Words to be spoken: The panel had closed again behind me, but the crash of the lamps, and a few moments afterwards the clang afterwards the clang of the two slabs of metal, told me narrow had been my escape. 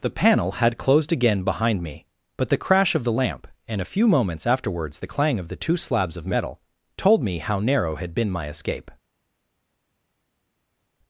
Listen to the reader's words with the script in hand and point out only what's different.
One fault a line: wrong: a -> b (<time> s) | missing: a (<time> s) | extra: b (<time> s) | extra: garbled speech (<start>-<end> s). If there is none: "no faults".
wrong: lamps -> lamp (3.1 s)
missing: afterwards the clang (5.4 s)
extra: how (7.4 s)